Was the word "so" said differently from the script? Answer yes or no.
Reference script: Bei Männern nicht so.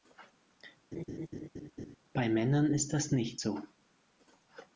no